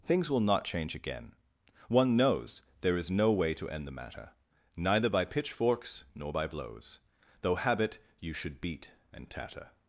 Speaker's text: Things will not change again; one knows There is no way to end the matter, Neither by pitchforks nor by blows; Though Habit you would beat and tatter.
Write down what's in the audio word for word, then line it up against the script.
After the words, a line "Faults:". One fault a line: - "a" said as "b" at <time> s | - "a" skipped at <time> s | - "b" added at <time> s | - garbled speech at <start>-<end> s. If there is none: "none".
Things will not change again; one knows There is no way to end the matter, Neither by pitchforks nor by blows; Though Habit you should beat and tatter.
Faults:
- "would" said as "should" at 8.3 s